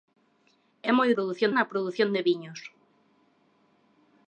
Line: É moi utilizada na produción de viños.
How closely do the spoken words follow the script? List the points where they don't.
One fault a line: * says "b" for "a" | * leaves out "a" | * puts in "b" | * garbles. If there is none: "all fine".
* says "produción" for "utilizada"